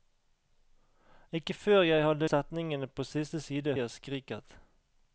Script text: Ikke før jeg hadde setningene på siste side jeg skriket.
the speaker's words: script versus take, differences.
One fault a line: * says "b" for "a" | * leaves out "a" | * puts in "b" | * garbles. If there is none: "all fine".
all fine